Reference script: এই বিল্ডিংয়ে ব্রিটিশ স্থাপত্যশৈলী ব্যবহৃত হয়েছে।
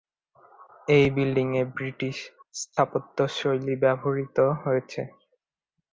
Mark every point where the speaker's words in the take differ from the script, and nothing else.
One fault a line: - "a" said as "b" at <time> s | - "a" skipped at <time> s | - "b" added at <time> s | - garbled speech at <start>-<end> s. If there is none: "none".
none